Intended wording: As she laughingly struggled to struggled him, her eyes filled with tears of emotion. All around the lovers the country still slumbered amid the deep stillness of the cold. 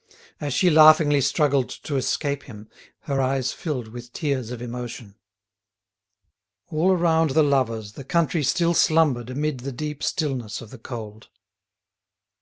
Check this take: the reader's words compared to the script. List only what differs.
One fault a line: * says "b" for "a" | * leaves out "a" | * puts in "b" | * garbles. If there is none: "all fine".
* says "escape" for "struggled"